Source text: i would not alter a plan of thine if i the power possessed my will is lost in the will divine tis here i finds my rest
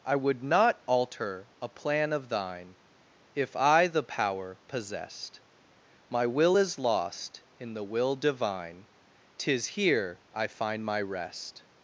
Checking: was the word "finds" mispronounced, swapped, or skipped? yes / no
yes